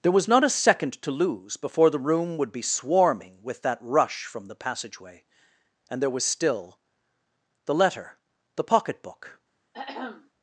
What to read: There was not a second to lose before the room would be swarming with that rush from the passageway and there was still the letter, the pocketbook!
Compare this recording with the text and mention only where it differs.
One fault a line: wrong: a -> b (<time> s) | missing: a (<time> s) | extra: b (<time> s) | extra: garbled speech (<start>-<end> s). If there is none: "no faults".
no faults